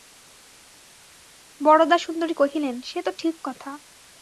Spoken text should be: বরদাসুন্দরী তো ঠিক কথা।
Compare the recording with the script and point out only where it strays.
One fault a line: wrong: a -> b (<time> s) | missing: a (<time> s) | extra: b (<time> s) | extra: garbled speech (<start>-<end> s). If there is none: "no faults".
extra: কহিলেন সে (2.3 s)